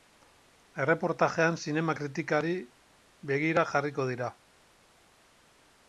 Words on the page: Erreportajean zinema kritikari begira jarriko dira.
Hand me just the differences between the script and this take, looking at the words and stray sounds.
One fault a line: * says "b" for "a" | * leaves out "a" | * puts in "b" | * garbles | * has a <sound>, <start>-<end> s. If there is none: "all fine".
all fine